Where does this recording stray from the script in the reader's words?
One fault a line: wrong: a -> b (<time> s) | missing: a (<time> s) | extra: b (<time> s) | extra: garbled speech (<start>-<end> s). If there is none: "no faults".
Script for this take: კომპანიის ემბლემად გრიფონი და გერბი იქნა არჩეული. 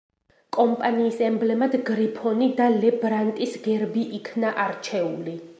extra: ლე ბრანტის (2.8 s)